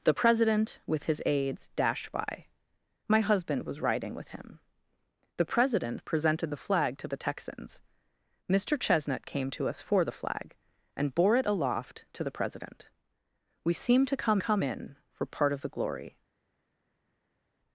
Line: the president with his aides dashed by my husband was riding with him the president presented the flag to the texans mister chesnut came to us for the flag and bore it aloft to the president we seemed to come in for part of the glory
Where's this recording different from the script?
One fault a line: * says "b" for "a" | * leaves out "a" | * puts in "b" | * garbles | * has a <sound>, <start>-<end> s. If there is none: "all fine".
* puts in "come"